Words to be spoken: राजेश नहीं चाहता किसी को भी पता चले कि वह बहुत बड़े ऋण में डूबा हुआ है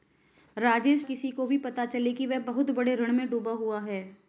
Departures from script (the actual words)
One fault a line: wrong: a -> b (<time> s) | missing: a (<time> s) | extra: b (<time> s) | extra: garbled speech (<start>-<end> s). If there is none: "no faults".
missing: नहीं चाहता (1.1 s)